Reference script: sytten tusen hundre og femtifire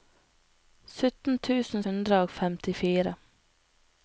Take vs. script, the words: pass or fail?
pass